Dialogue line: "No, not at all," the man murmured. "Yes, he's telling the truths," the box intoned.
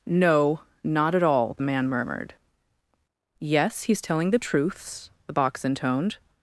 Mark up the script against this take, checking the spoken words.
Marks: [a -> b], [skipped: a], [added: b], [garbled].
"No, not at all," the man murmured. "Yes, he's telling the truths," the box intoned.